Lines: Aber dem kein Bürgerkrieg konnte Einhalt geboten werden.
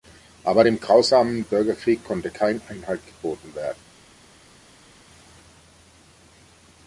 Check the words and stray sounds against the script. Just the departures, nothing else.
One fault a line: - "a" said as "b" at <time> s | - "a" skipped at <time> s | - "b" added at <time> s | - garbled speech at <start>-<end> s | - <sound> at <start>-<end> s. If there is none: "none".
- "kein" said as "grausamen" at 0.8 s
- "kein" added at 2.3 s